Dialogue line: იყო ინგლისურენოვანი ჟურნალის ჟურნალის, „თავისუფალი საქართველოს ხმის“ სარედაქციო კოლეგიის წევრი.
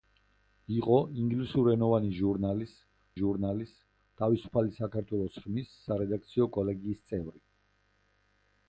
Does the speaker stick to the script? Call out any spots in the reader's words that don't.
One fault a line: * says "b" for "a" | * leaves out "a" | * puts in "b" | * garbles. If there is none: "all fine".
all fine